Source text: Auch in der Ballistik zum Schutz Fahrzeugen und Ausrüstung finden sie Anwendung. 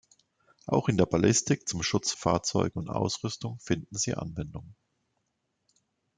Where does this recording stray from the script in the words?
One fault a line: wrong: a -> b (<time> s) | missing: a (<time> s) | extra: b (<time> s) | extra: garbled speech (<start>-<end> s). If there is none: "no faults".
no faults